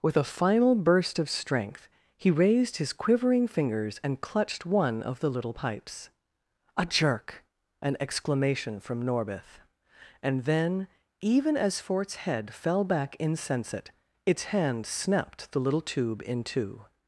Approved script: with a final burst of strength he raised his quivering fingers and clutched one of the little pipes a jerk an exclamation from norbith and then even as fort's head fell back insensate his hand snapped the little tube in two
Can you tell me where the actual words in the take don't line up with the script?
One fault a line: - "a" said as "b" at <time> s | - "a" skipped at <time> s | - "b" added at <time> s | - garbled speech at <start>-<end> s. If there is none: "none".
- "his" said as "its" at 14.2 s